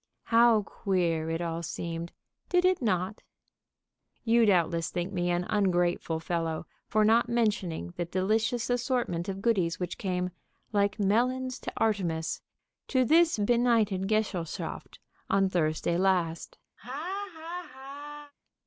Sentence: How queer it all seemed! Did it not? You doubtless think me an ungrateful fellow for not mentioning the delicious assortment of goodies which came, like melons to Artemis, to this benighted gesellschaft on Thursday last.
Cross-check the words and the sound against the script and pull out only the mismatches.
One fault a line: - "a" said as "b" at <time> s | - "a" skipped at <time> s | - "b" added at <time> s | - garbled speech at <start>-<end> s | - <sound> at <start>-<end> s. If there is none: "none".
- laugh at 16.8-18.3 s